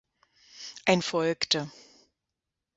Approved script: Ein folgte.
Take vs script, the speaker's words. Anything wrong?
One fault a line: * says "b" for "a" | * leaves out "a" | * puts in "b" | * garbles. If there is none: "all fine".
all fine